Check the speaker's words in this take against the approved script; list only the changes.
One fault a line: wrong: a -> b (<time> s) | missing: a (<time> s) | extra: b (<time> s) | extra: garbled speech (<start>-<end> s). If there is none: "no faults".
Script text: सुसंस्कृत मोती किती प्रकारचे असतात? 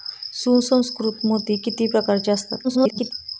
extra: garbled speech (2.6-3.1 s)